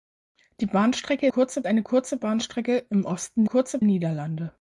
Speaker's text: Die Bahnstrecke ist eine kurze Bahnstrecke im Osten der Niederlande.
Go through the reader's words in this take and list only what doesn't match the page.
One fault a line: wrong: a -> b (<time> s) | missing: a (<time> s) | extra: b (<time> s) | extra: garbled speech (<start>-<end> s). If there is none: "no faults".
wrong: ist -> kurze (1.3 s)
wrong: der -> kurze (3.4 s)